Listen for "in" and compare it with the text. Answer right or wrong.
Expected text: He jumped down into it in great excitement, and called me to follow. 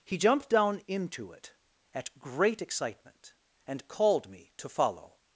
wrong